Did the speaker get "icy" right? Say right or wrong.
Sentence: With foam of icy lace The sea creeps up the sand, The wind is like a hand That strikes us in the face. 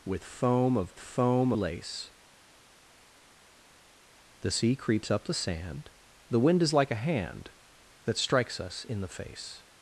wrong